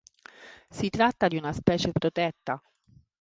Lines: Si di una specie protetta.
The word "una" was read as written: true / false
true